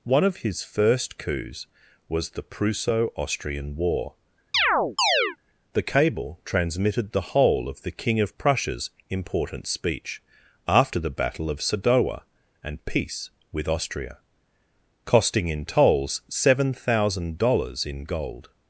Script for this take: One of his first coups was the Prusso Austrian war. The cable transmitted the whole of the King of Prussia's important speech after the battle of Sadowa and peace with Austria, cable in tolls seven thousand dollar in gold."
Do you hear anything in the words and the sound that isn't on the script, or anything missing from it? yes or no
yes